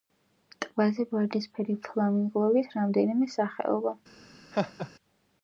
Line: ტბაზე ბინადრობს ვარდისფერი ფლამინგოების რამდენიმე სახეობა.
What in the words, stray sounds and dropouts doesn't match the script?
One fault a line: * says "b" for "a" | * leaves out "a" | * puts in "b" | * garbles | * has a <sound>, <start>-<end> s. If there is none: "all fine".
* leaves out "ბინადრობს"
* has a laugh, 4.5-4.9 s